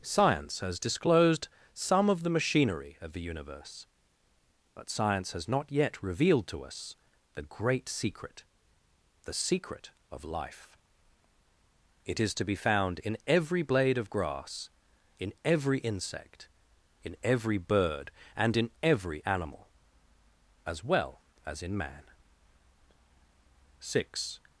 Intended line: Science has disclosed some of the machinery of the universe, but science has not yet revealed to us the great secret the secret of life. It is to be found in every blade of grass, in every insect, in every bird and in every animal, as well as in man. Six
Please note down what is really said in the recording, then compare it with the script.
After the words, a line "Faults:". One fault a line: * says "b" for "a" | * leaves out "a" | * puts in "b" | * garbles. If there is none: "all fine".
Science has disclosed some of the machinery of the universe, but science has not yet revealed to us the great secret the secret of life. It is to be found in every blade of grass, in every insect, in every bird and in every animal, as well as in man. Six
Faults:
all fine